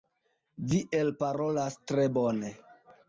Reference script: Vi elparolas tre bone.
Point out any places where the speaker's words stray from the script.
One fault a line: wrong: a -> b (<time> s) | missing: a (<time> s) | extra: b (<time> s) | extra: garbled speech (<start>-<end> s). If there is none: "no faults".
no faults